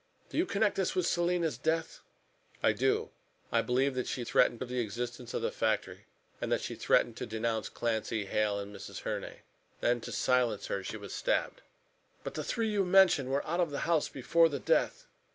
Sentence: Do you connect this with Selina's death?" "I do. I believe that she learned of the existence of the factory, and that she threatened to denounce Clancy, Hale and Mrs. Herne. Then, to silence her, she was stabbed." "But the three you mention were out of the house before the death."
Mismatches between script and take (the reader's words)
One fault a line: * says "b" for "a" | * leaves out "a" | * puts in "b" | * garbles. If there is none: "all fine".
* says "threatened" for "learned"